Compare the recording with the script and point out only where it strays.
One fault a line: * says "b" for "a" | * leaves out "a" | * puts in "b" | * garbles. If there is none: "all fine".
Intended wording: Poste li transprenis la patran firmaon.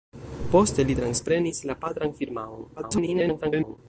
* garbles